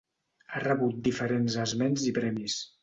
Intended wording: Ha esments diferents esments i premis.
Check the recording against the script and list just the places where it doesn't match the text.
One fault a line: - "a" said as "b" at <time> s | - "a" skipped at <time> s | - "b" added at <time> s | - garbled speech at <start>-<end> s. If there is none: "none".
- "esments" said as "rebut" at 0.6 s